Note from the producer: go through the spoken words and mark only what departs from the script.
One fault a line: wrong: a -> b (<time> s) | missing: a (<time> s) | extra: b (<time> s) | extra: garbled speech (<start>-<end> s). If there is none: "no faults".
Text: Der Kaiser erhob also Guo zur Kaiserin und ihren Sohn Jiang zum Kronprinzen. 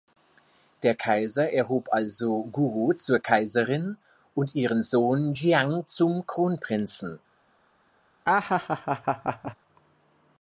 no faults